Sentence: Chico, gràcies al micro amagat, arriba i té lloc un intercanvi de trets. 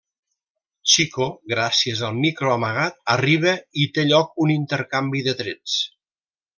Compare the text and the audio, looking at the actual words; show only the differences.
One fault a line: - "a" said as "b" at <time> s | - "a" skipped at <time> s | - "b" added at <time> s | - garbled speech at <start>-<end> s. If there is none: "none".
none